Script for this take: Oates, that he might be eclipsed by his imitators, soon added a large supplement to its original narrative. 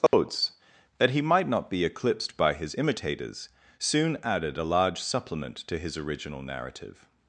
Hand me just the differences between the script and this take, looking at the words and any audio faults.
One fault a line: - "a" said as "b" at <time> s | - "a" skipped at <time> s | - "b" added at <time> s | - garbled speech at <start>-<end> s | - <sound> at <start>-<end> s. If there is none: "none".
- dropout at 0.1-0.1 s
- "not" added at 1.5 s
- "its" said as "his" at 5.8 s